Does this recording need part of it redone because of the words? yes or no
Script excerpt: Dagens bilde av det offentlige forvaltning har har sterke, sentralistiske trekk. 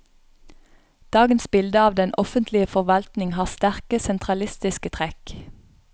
yes